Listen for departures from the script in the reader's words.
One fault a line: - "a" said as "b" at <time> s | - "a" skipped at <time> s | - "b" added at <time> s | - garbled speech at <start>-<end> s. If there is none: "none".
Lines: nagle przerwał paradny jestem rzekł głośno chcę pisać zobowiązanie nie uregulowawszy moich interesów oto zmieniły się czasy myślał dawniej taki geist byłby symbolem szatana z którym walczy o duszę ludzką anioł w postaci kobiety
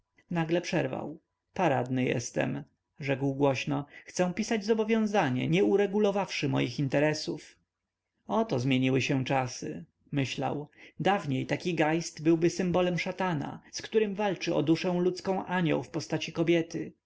none